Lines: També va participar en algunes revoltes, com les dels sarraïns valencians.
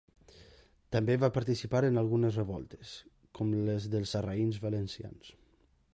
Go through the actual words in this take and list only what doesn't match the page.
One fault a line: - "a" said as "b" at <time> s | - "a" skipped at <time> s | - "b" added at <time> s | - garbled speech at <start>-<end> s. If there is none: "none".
none